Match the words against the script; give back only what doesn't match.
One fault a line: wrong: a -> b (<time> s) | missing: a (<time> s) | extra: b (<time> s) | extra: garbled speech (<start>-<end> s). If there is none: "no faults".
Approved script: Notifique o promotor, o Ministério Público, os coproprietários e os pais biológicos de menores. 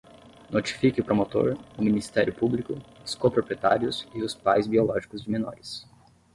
no faults